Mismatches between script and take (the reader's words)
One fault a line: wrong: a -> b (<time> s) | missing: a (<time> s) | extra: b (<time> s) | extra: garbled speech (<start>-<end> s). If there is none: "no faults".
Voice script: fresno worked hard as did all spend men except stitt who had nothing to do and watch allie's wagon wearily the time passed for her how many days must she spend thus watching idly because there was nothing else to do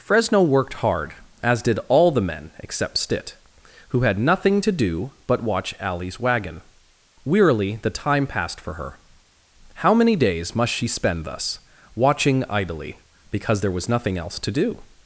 wrong: spend -> the (2.1 s)
wrong: and -> but (5.3 s)